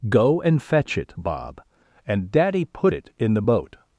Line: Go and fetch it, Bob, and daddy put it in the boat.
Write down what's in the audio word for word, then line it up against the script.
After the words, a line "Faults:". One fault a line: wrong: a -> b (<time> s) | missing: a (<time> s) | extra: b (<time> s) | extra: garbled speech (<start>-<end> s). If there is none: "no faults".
Go and fetch it, Bob, and daddy put it in the boat.
Faults:
no faults